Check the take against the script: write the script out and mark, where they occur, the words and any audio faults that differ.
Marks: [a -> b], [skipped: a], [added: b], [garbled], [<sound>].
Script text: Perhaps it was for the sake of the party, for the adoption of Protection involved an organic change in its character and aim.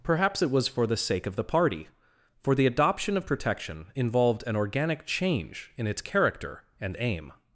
Perhaps it was for the sake of the party, for the adoption of Protection involved an organic change in its character and aim.